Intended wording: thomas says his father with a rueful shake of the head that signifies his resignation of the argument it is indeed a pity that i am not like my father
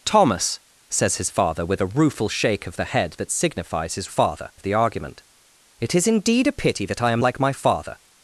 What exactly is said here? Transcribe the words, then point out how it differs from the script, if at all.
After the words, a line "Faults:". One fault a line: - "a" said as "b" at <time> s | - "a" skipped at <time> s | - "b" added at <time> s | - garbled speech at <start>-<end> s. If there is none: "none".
thomas says his father with a rueful shake of the head that signifies his father of the argument it is indeed a pity that i am like my father
Faults:
- "resignation" said as "father" at 4.0 s
- "not" skipped at 7.2 s